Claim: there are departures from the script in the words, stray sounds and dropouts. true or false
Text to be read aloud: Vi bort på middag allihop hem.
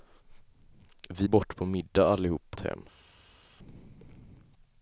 false